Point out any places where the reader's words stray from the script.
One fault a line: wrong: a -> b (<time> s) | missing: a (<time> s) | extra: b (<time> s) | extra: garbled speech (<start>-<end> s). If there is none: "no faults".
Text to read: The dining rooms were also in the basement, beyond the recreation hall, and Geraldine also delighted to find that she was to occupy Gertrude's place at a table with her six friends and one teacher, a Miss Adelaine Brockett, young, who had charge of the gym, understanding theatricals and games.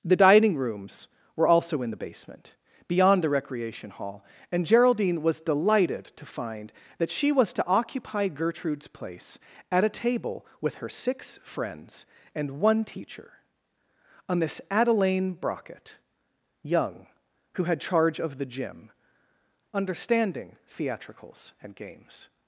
wrong: also -> was (5.2 s)